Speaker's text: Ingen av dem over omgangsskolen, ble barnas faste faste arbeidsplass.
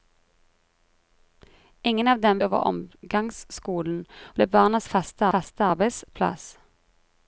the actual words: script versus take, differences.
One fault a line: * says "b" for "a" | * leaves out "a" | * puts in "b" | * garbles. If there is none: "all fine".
all fine